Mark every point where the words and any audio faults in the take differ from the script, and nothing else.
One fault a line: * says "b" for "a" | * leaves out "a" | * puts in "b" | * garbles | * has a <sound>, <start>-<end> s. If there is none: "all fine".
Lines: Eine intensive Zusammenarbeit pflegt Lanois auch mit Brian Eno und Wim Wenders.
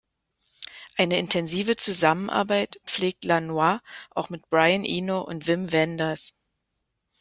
all fine